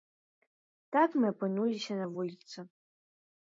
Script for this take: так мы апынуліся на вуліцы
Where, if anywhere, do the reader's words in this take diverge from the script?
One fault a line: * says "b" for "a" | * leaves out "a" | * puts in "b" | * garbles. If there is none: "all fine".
all fine